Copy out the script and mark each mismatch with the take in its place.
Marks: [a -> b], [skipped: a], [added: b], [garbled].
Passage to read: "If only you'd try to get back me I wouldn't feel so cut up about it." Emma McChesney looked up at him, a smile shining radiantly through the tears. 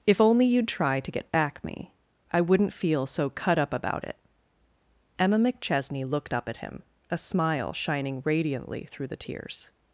"If only you'd try to get back me I wouldn't feel so cut up about it." Emma McChesney looked up at him, a smile shining radiantly through the tears.